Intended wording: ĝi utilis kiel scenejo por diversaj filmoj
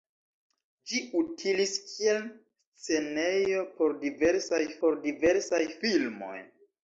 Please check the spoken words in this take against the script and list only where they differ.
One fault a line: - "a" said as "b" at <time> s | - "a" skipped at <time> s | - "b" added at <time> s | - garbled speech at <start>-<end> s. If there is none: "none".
- "por diversaj" added at 4.8 s